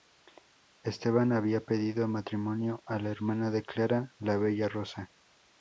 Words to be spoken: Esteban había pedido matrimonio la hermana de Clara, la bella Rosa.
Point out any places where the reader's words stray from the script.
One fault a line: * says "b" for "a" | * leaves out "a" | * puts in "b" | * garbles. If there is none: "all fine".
* puts in "a"